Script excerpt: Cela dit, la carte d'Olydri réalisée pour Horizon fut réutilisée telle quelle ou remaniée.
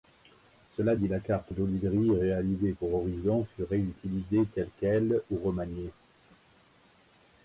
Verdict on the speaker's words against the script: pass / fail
pass